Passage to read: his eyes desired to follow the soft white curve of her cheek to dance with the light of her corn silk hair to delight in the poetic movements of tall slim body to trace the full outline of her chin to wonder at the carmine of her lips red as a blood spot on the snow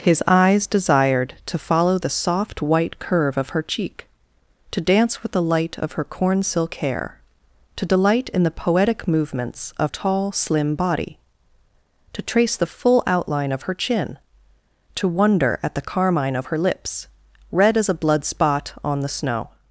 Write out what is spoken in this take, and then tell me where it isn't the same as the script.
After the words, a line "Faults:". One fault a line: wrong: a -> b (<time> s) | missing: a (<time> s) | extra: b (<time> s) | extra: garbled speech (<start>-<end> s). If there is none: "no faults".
his eyes desired to follow the soft white curve of her cheek to dance with the light of her corn silk hair to delight in the poetic movements of tall slim body to trace the full outline of her chin to wonder at the carmine of her lips red as a blood spot on the snow
Faults:
no faults